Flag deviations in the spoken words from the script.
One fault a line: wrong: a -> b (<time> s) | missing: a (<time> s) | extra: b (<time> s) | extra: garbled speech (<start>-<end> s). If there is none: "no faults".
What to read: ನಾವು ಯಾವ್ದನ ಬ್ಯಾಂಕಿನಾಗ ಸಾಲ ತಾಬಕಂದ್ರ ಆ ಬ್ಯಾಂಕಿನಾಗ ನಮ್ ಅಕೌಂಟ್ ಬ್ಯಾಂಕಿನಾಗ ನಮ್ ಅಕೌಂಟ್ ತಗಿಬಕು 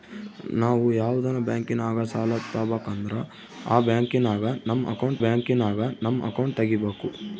no faults